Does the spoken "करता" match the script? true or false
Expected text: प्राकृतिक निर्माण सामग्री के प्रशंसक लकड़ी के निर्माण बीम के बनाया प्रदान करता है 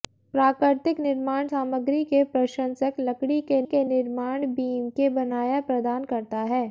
true